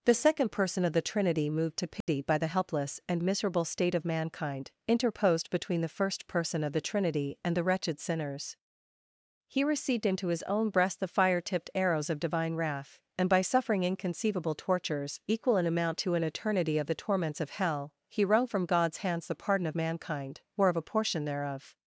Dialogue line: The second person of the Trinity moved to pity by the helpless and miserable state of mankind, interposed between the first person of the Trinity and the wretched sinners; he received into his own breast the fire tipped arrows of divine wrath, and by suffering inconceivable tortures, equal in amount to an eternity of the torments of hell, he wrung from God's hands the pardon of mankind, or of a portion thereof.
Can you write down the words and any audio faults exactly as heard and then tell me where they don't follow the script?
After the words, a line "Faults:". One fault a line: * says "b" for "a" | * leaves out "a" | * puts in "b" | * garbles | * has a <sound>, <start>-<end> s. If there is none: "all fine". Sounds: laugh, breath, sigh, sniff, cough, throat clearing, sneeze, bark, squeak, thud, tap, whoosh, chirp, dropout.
The second person of the Trinity moved to pity by the helpless and miserable state of mankind, interposed between the first person of the Trinity and the wretched sinners; he received into his own breast the fire tipped arrows of divine wrath, and by suffering inconceivable tortures, equal in amount to an eternity of the torments of hell, he wrung from God's hands the pardon of mankind, or of a portion thereof.
Faults:
* has a dropout, 2.0-2.1 s